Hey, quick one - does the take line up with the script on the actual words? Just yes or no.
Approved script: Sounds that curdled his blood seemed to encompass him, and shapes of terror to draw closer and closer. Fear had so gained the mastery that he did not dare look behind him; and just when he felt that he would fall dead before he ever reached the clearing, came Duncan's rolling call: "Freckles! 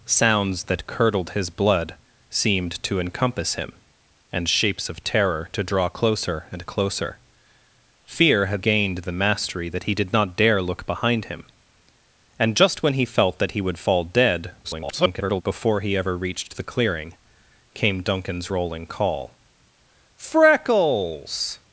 no